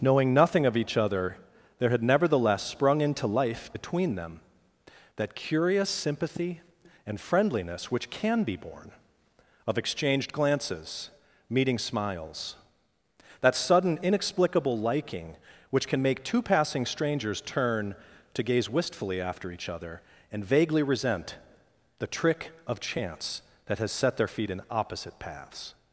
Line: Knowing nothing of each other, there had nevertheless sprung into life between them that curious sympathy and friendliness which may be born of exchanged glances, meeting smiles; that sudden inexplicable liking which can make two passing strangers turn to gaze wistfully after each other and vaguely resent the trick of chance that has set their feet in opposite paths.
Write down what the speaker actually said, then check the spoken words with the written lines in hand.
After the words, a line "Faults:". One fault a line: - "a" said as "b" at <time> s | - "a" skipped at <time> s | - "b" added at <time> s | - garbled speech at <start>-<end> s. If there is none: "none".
Knowing nothing of each other, there had nevertheless sprung into life between them that curious sympathy and friendliness which can be born of exchanged glances, meeting smiles; that sudden inexplicable liking which can make two passing strangers turn to gaze wistfully after each other and vaguely resent the trick of chance that has set their feet in opposite paths.
Faults:
- "may" said as "can" at 8.1 s